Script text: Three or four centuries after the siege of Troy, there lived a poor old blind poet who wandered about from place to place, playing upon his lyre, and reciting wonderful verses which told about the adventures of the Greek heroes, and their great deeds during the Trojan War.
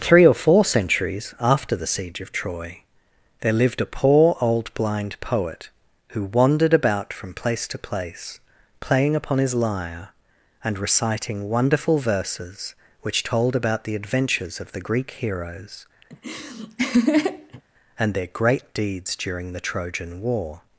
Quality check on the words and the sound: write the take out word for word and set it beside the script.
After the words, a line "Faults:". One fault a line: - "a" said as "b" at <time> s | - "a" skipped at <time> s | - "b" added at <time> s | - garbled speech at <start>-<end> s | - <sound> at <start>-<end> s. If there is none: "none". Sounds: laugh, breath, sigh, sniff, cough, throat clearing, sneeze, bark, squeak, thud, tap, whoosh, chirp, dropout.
Three or four centuries after the siege of Troy, there lived a poor old blind poet who wandered about from place to place, playing upon his lyre, and reciting wonderful verses which told about the adventures of the Greek heroes, and their great deeds during the Trojan War.
Faults:
- laugh at 16.1-17.6 s